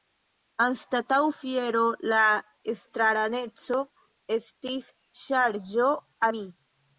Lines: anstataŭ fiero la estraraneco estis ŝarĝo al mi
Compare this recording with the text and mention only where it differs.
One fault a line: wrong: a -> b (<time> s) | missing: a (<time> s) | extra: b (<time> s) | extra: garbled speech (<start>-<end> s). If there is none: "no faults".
missing: al (6.0 s)